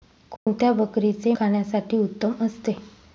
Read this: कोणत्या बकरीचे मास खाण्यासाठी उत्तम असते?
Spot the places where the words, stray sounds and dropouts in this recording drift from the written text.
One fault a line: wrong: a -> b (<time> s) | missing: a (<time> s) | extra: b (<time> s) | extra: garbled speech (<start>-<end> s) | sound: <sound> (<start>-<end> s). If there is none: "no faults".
sound: dropout (0.4-0.5 s)
missing: मास (1.3 s)